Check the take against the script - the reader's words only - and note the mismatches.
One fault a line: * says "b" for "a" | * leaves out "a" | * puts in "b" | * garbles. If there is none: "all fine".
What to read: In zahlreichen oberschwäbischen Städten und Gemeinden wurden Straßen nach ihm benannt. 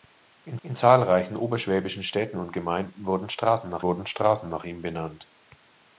* puts in "in"
* puts in "wurden Straßen nach"